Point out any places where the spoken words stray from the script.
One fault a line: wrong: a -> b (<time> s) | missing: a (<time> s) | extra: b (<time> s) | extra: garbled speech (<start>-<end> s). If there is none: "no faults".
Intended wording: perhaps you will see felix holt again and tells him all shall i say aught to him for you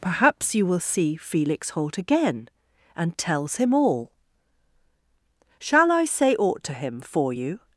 no faults